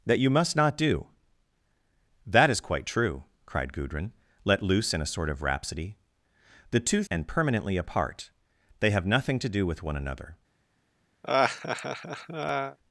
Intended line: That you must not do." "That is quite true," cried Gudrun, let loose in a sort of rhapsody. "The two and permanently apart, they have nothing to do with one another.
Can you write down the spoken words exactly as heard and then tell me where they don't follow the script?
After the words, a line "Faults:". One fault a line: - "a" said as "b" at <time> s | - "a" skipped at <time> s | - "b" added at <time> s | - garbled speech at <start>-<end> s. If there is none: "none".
That you must not do." "That is quite true," cried Gudrun, let loose in a sort of rhapsody. "The two and permanently apart, they have nothing to do with one another.
Faults:
none